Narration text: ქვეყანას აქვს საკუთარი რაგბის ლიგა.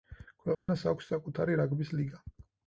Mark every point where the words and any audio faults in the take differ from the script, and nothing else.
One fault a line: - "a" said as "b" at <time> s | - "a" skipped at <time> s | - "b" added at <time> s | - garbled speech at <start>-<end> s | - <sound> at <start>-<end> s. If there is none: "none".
- dropout at 0.5-0.7 s